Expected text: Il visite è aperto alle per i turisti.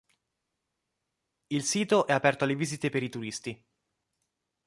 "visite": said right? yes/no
no